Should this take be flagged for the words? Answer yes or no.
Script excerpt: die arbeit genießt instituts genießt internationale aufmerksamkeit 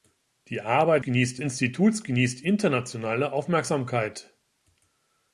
no